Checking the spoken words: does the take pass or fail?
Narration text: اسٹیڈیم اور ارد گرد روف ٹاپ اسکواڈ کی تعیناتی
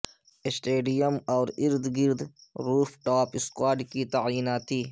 pass